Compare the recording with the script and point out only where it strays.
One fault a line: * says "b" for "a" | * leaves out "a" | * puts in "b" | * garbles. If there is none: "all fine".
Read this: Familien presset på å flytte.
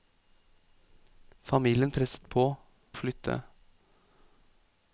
all fine